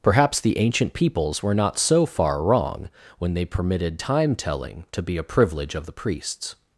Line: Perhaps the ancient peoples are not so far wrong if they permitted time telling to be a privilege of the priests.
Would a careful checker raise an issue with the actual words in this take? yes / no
yes